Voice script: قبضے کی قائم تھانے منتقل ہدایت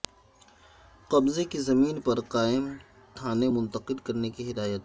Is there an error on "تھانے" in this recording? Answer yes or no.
no